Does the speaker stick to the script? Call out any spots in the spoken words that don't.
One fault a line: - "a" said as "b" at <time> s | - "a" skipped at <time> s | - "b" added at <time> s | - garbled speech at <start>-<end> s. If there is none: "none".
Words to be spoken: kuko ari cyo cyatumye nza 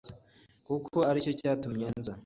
none